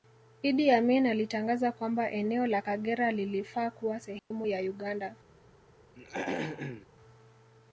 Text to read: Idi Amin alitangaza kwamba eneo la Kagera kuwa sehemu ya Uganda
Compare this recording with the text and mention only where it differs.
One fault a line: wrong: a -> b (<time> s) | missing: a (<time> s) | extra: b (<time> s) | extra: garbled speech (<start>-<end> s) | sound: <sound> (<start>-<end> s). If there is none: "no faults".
extra: lilifaa (3.1 s)
sound: dropout (4.2-4.3 s)
sound: throat clearing (5.9-6.9 s)